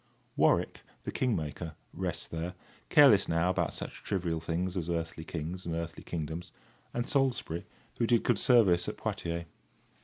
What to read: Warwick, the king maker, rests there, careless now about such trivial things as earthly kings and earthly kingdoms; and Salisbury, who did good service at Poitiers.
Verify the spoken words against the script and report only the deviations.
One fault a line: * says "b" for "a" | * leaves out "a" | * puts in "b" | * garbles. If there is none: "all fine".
all fine